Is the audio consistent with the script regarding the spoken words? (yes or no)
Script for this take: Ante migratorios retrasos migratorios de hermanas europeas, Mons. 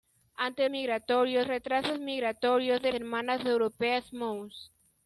yes